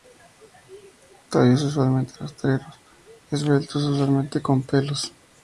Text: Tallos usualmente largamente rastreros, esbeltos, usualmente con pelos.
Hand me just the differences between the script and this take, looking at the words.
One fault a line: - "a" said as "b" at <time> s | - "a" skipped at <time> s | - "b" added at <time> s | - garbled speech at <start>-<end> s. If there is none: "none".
- "largamente" skipped at 2.2 s